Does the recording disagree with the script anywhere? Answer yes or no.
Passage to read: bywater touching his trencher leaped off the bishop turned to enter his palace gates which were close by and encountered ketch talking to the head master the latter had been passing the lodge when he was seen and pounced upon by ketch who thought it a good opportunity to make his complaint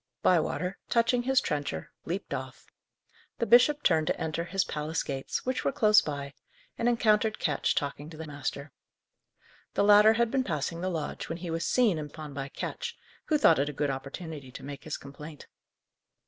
yes